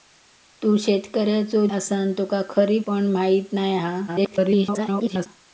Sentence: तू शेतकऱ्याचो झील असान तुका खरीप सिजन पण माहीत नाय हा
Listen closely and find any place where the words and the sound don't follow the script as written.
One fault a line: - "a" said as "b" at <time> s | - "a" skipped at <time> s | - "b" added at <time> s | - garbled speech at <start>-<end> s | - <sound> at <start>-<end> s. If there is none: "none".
- "झील" skipped at 1.6 s
- "सिजन" skipped at 2.9 s
- garbled speech at 4.1-5.3 s